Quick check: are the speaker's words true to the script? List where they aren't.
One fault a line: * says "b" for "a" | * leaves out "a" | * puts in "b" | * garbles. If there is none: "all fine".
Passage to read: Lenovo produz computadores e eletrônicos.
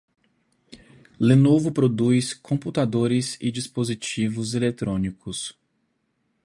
* puts in "dispositivos"